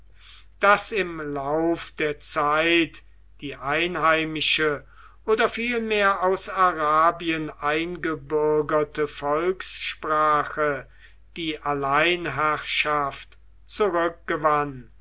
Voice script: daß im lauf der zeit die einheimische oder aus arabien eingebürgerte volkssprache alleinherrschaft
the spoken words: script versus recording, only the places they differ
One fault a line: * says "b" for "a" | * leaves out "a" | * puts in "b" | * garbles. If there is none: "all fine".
* puts in "vielmehr"
* puts in "die"